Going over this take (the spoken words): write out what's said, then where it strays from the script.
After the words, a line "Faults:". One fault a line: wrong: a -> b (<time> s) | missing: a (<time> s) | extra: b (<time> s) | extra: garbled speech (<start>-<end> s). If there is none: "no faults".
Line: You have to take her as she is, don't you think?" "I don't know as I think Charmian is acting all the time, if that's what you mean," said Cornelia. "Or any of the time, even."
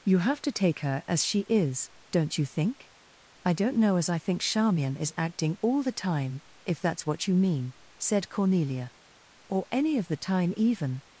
You have to take her as she is, don't you think?" "I don't know as I think Charmian is acting all the time, if that's what you mean," said Cornelia. "Or any of the time, even."
Faults:
no faults